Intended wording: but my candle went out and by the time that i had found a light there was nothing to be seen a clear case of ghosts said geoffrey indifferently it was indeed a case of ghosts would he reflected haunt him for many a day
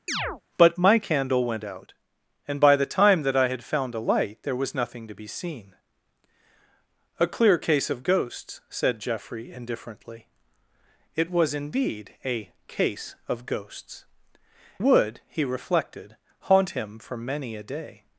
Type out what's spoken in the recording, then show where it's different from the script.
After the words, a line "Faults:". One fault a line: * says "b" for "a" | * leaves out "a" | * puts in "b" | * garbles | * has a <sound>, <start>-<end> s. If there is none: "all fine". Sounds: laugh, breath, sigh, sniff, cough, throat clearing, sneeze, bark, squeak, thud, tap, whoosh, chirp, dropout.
but my candle went out and by the time that i had found a light there was nothing to be seen a clear case of ghosts said geoffrey indifferently it was indeed a case of ghosts would he reflected haunt him for many a day
Faults:
* has a chirp, 0.1-0.4 s